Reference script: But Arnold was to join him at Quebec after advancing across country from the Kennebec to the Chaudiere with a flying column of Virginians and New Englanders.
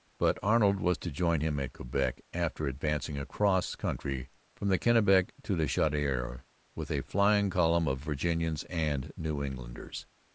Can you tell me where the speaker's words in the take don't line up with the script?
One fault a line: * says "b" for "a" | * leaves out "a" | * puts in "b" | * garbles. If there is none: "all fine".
all fine